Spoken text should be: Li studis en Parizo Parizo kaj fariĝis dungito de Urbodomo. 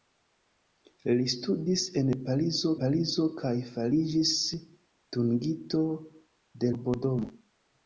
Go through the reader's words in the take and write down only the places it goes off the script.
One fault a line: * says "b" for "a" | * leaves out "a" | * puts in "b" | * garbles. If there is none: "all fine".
all fine